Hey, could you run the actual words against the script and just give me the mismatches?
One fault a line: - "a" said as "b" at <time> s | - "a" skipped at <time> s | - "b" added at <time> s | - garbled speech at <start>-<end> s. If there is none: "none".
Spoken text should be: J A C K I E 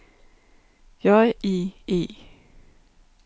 - "A C K" skipped at 1.4 s